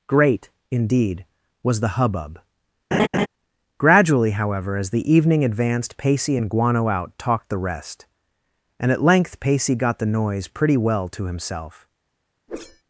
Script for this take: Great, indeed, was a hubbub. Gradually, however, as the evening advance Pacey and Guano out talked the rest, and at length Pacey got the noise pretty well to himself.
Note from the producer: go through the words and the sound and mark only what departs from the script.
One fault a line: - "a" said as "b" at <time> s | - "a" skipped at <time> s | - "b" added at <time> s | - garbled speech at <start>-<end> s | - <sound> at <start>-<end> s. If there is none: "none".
- "a" said as "the" at 1.8 s
- laugh at 2.9-3.3 s
- "advance" said as "advanced" at 5.4 s
- whoosh at 12.5-12.8 s